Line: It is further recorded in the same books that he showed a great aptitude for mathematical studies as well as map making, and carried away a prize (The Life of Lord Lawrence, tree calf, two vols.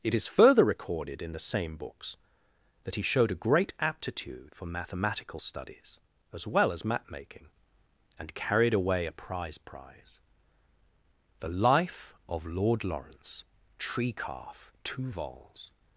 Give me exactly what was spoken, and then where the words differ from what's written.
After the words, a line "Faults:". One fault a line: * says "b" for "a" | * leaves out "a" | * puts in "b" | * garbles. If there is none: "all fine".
It is further recorded in the same books that he showed a great aptitude for mathematical studies as well as map making, and carried away a prize prize (The Life of Lord Lawrence, tree calf, two vols.
Faults:
* puts in "prize"